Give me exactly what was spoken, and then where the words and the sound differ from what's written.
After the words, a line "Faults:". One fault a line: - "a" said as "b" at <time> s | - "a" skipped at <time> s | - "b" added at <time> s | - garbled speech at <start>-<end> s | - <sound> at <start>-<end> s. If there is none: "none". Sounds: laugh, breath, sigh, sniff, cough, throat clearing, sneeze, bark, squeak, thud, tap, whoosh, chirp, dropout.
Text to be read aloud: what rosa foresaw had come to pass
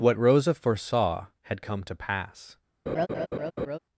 what rosa foresaw had come to pass
Faults:
- laugh at 2.9-3.8 s